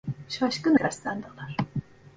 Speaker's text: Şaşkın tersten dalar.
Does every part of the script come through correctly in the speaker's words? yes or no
yes